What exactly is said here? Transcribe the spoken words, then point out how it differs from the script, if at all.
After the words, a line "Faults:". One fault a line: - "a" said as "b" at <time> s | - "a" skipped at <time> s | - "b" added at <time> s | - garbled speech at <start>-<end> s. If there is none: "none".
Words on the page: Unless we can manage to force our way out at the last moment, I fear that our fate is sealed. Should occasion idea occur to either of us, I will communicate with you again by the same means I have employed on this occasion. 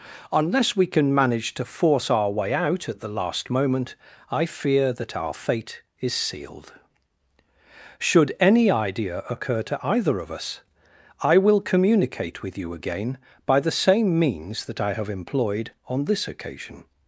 Unless we can manage to force our way out at the last moment, I fear that our fate is sealed. Should any idea occur to either of us, I will communicate with you again by the same means that I have employed on this occasion.
Faults:
- "occasion" said as "any" at 8.4 s
- "that" added at 14.6 s